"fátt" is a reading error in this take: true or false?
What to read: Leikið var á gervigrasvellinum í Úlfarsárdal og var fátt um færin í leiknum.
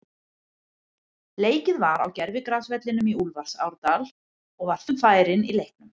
true